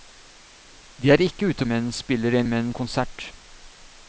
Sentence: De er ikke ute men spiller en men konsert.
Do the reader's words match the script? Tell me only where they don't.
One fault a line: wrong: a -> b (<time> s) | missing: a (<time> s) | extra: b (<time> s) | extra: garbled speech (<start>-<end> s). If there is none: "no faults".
no faults